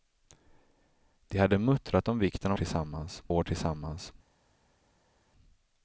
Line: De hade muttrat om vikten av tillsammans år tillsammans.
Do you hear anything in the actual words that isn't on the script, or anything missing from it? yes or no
no